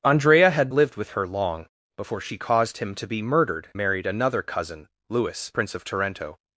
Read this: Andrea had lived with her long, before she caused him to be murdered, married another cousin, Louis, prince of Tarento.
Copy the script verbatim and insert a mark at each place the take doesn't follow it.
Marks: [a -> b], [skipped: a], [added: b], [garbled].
Andrea had lived with her long, before she caused him to be murdered, married another cousin, Louis, prince of Tarento.